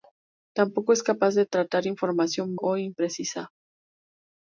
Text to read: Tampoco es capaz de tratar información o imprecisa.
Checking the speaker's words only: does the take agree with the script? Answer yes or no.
yes